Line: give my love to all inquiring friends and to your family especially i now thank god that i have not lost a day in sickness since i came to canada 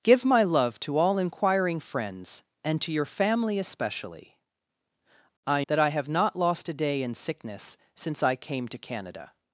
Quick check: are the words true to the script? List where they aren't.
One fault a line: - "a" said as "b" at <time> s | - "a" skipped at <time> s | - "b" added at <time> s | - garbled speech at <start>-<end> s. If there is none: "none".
- "now thank god" skipped at 5.6 s